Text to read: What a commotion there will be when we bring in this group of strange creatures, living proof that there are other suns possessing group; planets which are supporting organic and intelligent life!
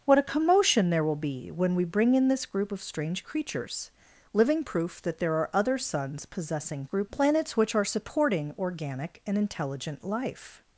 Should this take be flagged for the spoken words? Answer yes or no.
no